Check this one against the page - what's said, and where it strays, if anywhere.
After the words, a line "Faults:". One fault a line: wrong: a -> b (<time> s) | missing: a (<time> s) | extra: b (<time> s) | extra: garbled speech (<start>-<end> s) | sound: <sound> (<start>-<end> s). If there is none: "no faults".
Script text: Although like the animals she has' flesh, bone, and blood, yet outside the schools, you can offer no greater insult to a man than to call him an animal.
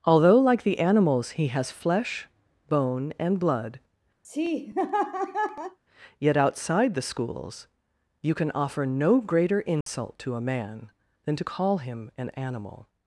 Although like the animals he has' flesh, bone, and blood, yet outside the schools, you can offer no greater insult to a man than to call him an animal.
Faults:
wrong: she -> he (1.3 s)
sound: laugh (4.2-5.8 s)
sound: dropout (9.8-9.9 s)